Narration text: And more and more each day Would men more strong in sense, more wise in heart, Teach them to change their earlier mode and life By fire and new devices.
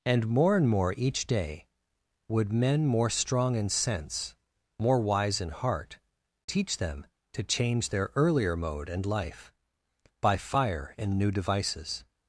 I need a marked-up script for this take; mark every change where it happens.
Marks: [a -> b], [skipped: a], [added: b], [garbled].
And more and more each day Would men more strong in sense, more wise in heart, Teach them to change their earlier mode and life By fire and new devices.